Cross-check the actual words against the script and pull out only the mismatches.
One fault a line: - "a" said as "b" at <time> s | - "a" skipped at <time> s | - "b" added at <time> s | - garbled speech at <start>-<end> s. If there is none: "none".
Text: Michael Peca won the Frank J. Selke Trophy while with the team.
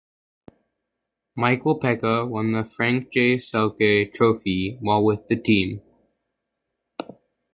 none